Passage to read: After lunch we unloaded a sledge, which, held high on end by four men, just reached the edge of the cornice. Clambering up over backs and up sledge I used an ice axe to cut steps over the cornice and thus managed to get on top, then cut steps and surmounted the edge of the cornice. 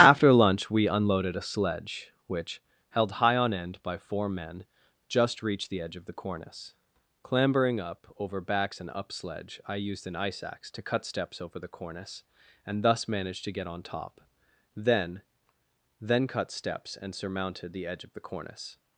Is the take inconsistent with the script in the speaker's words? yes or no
yes